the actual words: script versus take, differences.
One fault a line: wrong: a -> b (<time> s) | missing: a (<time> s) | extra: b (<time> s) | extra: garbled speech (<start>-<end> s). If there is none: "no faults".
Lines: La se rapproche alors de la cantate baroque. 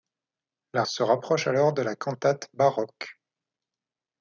no faults